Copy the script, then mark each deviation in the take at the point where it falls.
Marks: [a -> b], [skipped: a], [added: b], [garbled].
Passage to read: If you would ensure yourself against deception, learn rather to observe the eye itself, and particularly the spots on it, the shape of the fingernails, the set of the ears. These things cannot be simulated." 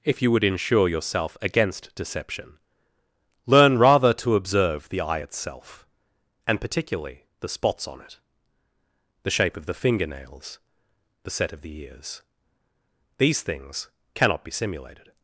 If you would ensure yourself against deception, learn rather to observe the eye itself, and particularly the spots on it, the shape of the fingernails, the set of the ears. These things cannot be simulated."